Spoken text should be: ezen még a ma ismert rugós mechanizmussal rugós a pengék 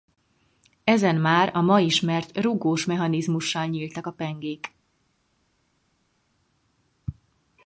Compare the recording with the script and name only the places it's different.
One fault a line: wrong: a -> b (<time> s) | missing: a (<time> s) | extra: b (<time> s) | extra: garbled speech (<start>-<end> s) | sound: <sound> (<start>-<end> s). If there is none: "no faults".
wrong: még -> már (1.1 s)
wrong: rugós -> nyíltak (3.7 s)